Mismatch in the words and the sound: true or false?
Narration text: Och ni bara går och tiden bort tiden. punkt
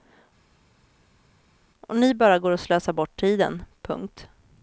true